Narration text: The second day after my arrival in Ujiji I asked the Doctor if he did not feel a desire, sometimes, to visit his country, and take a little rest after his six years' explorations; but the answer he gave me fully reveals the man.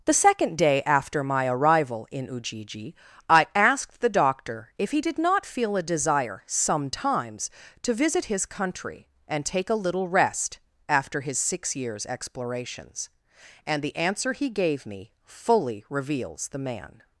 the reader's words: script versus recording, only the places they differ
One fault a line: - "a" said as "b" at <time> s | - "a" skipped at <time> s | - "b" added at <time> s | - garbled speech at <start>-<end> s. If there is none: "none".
- "but" said as "and" at 13.6 s